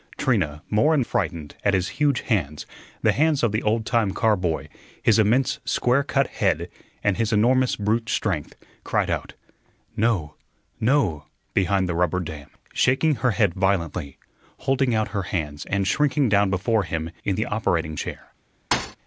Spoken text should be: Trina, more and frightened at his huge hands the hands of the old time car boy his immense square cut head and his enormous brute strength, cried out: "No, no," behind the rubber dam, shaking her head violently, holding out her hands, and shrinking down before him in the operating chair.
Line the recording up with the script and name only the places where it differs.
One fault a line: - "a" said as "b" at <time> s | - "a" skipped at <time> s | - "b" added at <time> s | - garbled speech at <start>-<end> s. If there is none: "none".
none